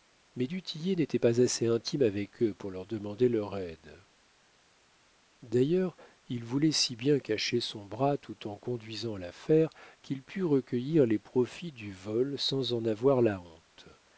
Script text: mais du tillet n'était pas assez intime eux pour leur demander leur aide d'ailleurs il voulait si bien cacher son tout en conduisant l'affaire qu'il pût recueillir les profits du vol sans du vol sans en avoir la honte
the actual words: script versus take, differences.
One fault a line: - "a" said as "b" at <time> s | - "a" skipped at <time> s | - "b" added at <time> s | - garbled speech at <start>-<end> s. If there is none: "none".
- "avec" added at 2.0 s
- "bras" added at 7.8 s
- "du vol sans" skipped at 12.7 s